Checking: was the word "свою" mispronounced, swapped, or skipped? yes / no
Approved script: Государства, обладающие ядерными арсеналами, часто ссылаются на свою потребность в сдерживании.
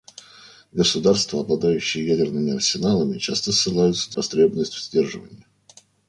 yes